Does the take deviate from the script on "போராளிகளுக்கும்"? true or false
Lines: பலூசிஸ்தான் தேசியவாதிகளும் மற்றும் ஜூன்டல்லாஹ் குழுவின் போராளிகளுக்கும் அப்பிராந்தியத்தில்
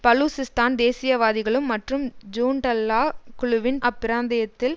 true